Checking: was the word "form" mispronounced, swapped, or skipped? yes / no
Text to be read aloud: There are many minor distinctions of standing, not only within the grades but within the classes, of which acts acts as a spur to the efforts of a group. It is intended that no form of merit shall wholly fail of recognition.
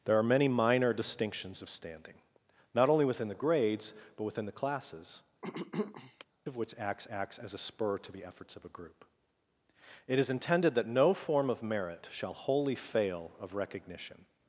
no